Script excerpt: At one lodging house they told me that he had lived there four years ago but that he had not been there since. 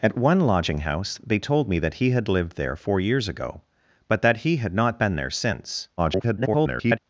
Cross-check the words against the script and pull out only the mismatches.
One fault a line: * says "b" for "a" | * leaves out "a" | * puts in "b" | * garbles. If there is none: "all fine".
* garbles